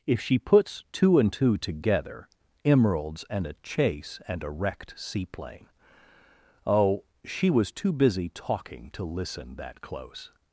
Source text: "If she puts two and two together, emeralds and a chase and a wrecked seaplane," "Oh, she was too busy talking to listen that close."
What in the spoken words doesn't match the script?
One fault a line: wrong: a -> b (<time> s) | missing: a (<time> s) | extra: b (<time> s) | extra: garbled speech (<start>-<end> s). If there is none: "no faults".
no faults